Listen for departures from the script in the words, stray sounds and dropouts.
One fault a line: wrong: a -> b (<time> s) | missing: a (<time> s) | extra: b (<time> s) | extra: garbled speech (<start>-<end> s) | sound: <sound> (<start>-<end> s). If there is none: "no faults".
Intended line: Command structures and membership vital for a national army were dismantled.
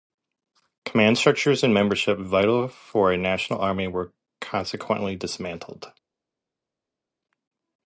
extra: consequently (4.4 s)